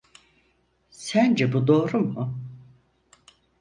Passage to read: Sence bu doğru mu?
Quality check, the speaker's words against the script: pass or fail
pass